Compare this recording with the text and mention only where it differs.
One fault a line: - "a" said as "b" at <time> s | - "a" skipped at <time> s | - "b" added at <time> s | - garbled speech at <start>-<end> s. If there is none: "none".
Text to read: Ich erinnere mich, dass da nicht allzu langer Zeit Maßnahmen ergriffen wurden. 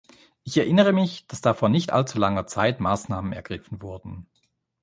- "vor" added at 1.5 s